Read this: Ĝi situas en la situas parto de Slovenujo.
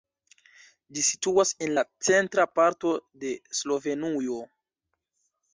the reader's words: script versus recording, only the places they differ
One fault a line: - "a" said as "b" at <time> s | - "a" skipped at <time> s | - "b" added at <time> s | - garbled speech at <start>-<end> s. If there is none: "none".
- "situas" said as "centra" at 2.1 s